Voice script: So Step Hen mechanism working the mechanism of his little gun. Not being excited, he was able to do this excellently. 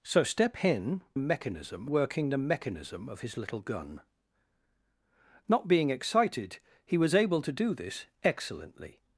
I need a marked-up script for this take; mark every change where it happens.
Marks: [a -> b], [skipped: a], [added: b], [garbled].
So Step Hen mechanism working the mechanism of his little gun. Not being excited, he was able to do this excellently.